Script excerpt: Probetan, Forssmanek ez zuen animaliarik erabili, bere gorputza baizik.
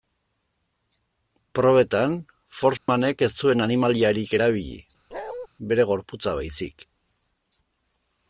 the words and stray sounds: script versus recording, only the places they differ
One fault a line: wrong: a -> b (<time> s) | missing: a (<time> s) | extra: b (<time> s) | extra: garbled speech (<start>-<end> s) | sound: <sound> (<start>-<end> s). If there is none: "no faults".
sound: dropout (2.8-2.9 s)
sound: bark (5.1-5.5 s)